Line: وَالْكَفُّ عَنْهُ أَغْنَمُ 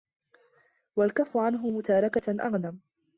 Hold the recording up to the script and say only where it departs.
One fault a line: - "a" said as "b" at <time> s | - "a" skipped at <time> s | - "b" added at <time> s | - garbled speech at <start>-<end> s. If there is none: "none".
- "مُتَارَكَةً" added at 1.6 s